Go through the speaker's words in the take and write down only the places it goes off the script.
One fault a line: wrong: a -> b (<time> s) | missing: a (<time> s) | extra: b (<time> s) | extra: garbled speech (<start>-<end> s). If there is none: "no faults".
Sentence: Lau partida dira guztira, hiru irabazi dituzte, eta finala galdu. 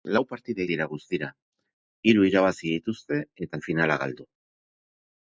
no faults